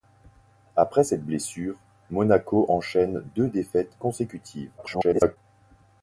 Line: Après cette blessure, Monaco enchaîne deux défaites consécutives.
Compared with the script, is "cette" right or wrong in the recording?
right